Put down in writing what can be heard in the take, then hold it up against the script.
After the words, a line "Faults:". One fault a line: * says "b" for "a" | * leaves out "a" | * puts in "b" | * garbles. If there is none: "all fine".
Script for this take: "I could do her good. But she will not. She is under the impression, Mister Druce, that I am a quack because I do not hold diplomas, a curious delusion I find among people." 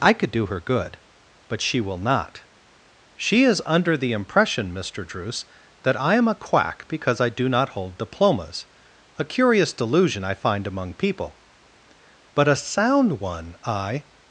"I could do her good. But she will not. She is under the impression, Mister Druce, that I am a quack because I do not hold diplomas, a curious delusion I find among people." "But a sound one," I
Faults:
* puts in "But a sound one I"